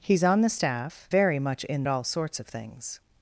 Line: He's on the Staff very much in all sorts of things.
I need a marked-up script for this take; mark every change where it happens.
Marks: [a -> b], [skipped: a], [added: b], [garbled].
He's on the Staff very much in all sorts of things.